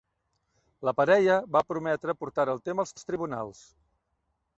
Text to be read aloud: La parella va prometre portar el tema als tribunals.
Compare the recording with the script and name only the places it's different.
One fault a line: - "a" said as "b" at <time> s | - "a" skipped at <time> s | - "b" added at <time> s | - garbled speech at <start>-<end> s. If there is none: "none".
- "als" added at 3.0 s